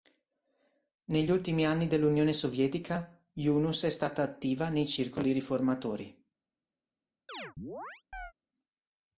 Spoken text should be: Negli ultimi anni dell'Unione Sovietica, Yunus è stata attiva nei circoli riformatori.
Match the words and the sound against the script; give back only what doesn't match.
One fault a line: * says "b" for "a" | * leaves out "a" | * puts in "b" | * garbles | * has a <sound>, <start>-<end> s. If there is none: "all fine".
* has a chirp, 7.3-8.3 s